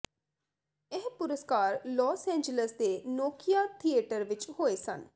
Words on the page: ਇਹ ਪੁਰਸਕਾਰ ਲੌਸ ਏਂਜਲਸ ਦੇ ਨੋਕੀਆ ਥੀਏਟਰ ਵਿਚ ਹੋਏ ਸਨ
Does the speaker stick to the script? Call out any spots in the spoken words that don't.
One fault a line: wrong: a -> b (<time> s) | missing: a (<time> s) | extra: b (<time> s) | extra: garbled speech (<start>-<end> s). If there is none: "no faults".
no faults